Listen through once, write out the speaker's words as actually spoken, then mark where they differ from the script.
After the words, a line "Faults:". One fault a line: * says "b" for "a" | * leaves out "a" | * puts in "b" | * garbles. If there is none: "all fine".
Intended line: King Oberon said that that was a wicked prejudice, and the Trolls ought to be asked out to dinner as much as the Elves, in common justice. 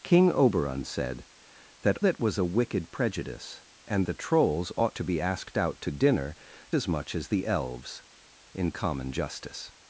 King Oberon said that that was a wicked prejudice, and the Trolls ought to be asked out to dinner as much as the Elves, in common justice.
Faults:
all fine